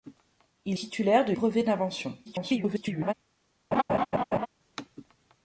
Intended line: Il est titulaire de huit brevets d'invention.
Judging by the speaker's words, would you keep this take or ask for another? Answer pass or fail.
fail